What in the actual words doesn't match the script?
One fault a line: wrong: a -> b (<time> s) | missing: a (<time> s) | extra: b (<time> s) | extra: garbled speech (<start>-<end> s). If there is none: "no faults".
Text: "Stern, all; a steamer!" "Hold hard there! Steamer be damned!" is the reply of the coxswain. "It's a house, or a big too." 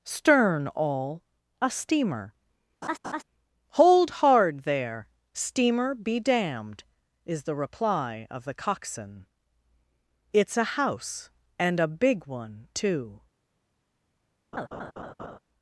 wrong: or -> and (11.6 s)
extra: one (12.3 s)